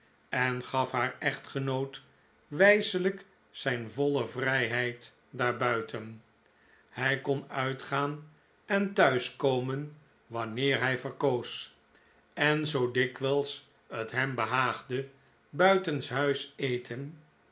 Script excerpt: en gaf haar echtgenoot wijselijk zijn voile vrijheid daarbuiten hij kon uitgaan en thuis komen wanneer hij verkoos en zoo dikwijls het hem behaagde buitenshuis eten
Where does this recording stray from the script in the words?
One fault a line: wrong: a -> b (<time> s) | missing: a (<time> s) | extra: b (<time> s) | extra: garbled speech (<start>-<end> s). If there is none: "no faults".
no faults